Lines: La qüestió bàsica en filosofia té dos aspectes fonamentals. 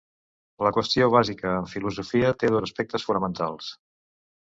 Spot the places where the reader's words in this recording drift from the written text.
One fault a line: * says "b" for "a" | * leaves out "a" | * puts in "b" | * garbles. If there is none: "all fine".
all fine